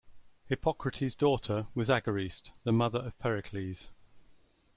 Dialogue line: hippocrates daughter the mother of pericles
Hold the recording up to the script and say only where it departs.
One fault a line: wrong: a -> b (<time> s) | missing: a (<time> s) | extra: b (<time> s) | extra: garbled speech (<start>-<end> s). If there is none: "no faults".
extra: was agariste (1.8 s)